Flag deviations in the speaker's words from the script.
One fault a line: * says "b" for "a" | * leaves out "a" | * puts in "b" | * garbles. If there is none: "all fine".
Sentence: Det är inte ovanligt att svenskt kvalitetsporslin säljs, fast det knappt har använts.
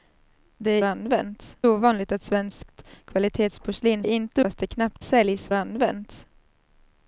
* says "använts" for "inte"
* says "inte" for "säljs"
* says "säljs" for "har"